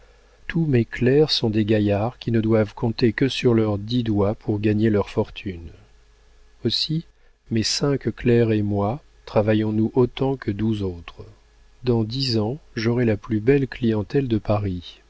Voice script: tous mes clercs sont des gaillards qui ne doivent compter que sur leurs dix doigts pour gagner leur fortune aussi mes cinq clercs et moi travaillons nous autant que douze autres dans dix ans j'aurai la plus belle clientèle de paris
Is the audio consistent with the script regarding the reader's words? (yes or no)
yes